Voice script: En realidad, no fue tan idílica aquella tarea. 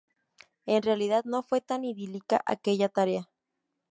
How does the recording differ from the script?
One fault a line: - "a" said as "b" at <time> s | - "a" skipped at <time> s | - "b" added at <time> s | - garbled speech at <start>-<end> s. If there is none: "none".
none